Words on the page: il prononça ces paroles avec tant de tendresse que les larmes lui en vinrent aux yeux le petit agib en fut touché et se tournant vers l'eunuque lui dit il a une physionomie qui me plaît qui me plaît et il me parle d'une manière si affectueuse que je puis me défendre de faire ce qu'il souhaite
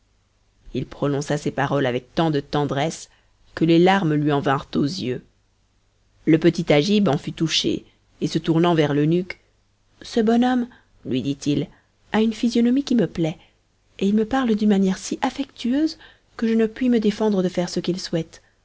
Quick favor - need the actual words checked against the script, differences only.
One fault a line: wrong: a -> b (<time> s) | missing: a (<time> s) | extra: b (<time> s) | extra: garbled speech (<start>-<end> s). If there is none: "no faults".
extra: ce bon homme (10.0 s)
missing: qui me plaît (13.4 s)
extra: ne (16.5 s)